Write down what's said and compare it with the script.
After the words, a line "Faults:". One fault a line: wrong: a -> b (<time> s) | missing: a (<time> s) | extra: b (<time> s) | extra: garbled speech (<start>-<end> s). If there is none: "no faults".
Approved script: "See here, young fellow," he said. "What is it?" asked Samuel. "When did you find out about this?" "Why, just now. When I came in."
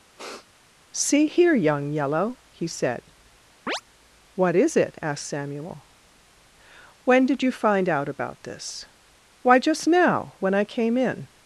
"See here, young yellow," he said. "What is it?" asked Samuel. "When did you find out about this?" "Why, just now. When I came in."
Faults:
wrong: fellow -> yellow (1.9 s)